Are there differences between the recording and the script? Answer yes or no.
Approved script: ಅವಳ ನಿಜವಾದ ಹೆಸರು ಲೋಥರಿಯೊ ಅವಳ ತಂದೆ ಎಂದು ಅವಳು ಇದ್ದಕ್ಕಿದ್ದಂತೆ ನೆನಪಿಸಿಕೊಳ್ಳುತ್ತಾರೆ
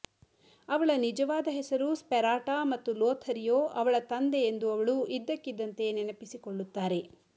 yes